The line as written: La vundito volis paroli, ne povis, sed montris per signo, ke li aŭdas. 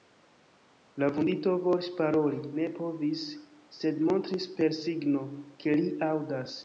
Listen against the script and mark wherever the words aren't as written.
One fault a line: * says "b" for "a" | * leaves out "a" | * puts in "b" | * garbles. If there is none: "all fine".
all fine